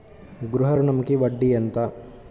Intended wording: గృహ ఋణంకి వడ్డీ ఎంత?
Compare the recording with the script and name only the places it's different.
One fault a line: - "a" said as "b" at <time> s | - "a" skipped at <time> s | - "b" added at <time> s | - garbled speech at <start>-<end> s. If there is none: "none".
none